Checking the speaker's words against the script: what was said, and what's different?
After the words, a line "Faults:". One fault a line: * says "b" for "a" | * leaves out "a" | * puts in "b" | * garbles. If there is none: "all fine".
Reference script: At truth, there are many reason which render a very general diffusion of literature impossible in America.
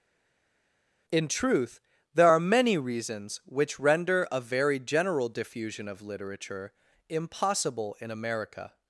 In truth, there are many reasons which render a very general diffusion of literature impossible in America.
Faults:
* says "In" for "At"
* says "reasons" for "reason"